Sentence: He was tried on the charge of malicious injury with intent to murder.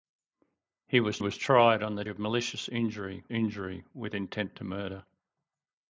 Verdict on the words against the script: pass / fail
fail